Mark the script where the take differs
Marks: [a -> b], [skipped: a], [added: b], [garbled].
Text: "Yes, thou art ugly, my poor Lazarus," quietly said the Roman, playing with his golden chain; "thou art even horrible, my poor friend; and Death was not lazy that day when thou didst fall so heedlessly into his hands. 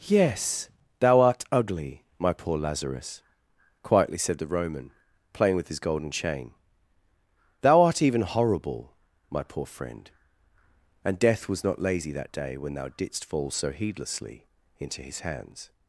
"Yes, thou art ugly, my poor Lazarus," quietly said the Roman, playing with his golden chain; "thou art even horrible, my poor friend; and Death was not lazy that day when thou didst fall so heedlessly into his hands.